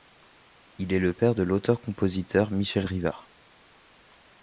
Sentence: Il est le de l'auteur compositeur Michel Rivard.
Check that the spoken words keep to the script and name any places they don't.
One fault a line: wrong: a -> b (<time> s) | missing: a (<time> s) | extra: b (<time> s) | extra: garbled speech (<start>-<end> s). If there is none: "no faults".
extra: père (1.1 s)